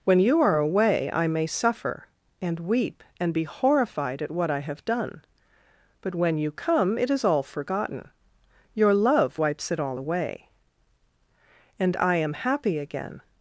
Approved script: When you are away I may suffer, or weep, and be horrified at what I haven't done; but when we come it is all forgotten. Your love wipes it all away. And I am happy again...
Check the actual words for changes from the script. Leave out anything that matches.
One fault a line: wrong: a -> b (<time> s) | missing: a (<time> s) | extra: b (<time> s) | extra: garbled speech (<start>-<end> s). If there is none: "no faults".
wrong: or -> and (2.4 s)
wrong: haven't -> have (4.6 s)
wrong: we -> you (6.4 s)